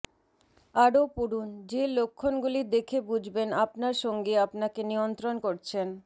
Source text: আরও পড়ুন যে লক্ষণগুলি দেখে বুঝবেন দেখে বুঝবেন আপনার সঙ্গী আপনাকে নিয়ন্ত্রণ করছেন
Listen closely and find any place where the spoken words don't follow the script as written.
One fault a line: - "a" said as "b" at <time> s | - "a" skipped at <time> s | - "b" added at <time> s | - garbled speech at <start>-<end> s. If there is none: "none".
- "দেখে বুঝবেন" skipped at 3.5 s